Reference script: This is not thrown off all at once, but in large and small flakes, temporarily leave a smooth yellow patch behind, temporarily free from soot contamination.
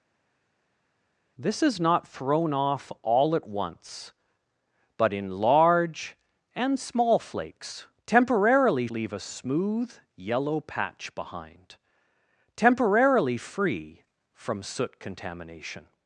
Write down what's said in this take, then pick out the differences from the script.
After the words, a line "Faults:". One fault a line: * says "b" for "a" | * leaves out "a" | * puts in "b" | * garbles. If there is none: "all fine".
This is not thrown off all at once, but in large and small flakes, temporarily leave a smooth yellow patch behind, temporarily free from soot contamination.
Faults:
all fine